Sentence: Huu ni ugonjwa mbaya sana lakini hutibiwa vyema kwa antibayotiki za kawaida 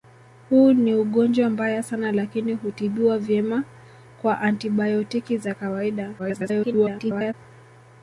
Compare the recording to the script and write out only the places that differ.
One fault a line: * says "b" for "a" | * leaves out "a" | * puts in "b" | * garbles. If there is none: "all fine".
* garbles